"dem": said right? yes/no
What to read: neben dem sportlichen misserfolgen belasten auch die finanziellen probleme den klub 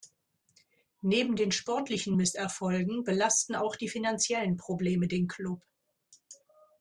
no